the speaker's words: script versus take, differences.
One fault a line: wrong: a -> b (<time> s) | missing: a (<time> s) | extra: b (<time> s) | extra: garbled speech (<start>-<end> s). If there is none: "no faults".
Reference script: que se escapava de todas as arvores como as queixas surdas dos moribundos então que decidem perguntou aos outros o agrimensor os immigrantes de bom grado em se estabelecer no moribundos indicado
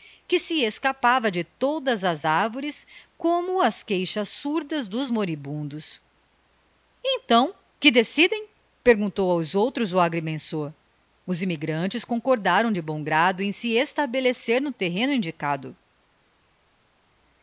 extra: concordaram (12.0 s)
wrong: moribundos -> terreno (14.7 s)